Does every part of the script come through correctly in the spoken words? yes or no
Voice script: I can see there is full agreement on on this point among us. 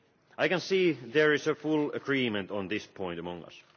no